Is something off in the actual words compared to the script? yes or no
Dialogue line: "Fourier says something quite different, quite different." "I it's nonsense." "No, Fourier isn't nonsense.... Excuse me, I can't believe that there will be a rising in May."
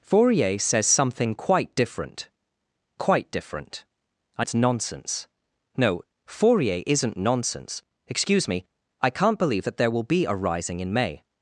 no